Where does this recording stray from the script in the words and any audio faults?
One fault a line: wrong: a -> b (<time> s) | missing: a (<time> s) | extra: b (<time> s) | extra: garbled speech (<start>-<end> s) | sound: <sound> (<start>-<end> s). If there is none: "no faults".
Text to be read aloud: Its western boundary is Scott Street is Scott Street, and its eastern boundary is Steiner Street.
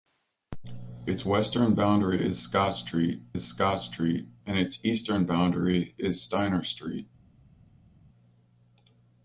no faults